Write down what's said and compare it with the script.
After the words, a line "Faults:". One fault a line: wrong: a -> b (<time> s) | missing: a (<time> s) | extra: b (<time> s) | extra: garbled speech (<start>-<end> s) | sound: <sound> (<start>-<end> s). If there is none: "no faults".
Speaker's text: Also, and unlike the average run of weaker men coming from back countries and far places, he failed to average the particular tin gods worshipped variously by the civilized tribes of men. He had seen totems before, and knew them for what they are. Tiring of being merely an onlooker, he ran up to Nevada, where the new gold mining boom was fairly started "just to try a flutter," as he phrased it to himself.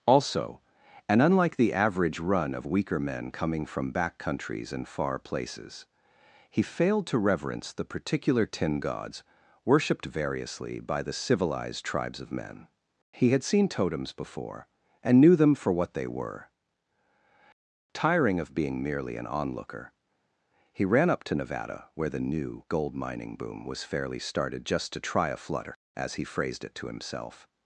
Also, and unlike the average run of weaker men coming from back countries and far places, he failed to reverence the particular tin gods worshipped variously by the civilized tribes of men. He had seen totems before, and knew them for what they were. Tiring of being merely an onlooker, he ran up to Nevada, where the new gold mining boom was fairly started "just to try a flutter," as he phrased it to himself.
Faults:
wrong: average -> reverence (7.2 s)
wrong: are -> were (16.1 s)